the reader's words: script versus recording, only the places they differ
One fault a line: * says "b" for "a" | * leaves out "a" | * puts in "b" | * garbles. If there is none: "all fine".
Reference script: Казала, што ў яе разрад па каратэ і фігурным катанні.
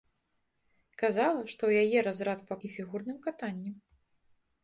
* leaves out "каратэ"